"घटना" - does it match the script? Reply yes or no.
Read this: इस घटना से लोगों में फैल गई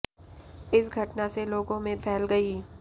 yes